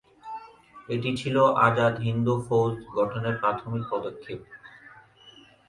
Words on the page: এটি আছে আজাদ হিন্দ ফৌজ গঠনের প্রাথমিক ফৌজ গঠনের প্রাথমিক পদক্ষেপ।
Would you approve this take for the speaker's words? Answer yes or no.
no